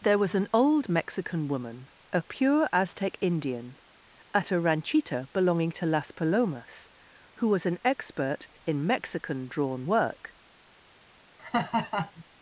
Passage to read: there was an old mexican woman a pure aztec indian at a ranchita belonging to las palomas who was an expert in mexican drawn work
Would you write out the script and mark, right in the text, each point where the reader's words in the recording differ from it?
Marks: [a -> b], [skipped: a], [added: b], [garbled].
there was an old mexican woman a pure aztec indian at a ranchita belonging to las palomas who was an expert in mexican drawn work